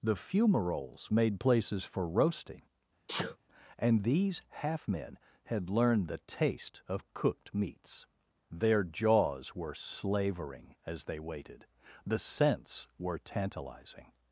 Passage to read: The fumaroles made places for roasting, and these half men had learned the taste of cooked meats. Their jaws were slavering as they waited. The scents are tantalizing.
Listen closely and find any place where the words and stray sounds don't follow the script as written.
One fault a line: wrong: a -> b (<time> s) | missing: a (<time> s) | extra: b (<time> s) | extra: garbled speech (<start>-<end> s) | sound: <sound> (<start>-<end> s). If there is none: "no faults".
sound: sneeze (3.1-3.4 s)
wrong: are -> were (13.0 s)